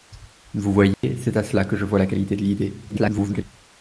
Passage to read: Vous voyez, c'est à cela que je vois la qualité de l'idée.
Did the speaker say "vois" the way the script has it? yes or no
yes